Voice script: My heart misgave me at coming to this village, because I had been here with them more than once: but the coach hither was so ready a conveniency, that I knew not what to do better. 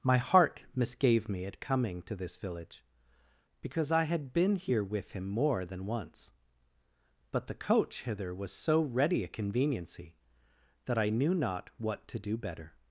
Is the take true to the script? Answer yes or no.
no